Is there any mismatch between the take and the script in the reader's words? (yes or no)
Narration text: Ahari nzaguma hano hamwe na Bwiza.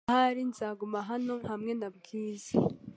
no